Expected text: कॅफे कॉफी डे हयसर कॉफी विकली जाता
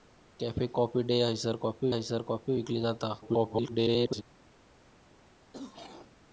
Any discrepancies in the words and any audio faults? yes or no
yes